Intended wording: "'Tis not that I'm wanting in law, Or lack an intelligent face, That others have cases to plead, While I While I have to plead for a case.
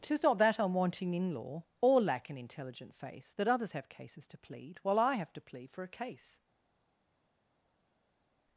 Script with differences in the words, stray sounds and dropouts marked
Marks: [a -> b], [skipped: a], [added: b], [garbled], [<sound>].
"'Tis not that I'm wanting in law, Or lack an intelligent face, That others have cases to plead, While I [skipped: While I] have to plead for a case.